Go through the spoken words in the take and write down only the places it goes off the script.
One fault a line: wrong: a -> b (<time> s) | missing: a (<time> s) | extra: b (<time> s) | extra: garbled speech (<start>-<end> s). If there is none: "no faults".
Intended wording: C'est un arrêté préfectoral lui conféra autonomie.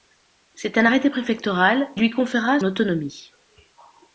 no faults